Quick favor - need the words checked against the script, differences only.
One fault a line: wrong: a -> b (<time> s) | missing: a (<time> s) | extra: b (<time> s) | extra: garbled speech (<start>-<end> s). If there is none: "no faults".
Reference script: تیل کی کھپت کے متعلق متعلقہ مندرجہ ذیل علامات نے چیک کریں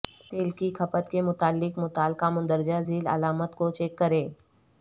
wrong: نے -> کو (3.6 s)